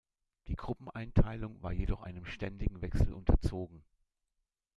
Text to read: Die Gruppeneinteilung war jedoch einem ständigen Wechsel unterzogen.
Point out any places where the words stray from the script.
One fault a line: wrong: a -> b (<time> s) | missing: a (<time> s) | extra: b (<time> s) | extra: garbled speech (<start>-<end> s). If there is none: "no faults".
no faults